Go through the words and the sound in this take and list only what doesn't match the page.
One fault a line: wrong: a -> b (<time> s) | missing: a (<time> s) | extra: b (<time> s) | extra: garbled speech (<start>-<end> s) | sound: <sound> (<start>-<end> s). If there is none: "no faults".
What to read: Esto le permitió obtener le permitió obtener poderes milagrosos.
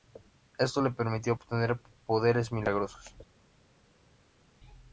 missing: le permitió obtener (1.8 s)